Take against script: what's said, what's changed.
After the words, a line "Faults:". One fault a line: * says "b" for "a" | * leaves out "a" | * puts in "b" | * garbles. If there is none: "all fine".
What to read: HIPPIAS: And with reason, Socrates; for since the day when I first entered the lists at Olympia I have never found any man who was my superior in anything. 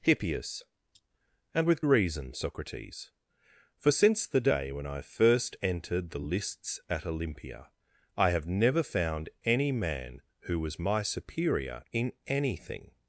HIPPIAS: And with reason, Socrates; for since the day when I first entered the lists at Olympia I have never found any man who was my superior in anything.
Faults:
all fine